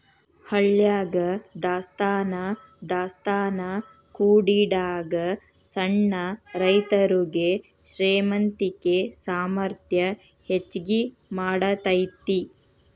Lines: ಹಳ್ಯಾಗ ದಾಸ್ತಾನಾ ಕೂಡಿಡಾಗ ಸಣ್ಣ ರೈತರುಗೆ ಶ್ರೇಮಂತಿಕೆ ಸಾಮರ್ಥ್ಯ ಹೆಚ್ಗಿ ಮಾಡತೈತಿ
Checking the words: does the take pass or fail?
fail